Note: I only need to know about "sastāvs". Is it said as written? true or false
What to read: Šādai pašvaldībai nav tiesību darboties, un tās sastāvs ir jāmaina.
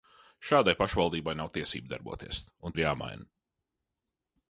false